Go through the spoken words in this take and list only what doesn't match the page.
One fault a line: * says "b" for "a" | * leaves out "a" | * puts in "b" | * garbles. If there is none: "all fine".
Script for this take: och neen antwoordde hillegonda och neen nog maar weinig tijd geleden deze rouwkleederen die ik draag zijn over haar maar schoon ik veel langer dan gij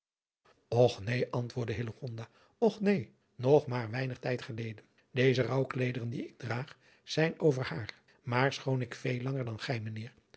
all fine